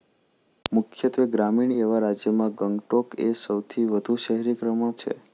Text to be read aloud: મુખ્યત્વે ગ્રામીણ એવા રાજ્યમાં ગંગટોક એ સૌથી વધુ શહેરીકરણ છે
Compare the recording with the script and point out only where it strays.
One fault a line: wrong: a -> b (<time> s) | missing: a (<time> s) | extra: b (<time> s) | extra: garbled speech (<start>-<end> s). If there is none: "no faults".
no faults